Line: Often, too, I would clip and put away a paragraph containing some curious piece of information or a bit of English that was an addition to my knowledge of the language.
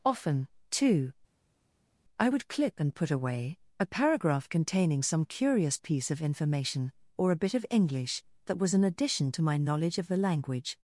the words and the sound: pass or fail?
pass